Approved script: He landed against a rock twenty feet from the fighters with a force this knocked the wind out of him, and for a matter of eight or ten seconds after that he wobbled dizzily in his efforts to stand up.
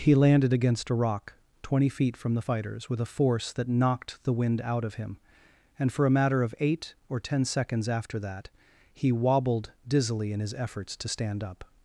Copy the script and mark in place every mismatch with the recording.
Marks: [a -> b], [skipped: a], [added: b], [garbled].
He landed against a rock twenty feet from the fighters with a force [this -> that] knocked the wind out of him, and for a matter of eight or ten seconds after that he wobbled dizzily in his efforts to stand up.